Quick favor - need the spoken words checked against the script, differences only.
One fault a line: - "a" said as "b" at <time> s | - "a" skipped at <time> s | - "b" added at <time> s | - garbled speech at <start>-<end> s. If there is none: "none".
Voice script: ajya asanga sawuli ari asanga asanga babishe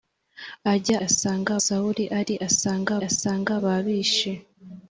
none